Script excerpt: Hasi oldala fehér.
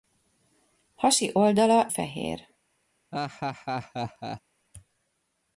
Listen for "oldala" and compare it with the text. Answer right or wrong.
right